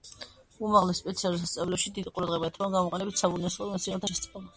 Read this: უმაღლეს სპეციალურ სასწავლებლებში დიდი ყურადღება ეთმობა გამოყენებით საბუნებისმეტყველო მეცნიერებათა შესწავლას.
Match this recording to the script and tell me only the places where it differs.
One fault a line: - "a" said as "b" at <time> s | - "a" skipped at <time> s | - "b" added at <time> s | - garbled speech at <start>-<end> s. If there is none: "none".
none